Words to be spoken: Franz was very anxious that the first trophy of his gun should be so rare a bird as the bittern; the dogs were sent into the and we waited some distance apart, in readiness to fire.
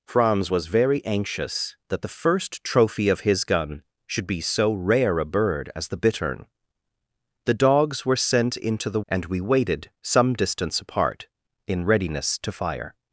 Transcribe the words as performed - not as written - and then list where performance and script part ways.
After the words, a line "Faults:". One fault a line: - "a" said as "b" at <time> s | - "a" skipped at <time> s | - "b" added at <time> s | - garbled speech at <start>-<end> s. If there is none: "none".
Franz was very anxious that the first trophy of his gun should be so rare a bird as the bittern; the dogs were sent into the and we waited some distance apart, in readiness to fire.
Faults:
none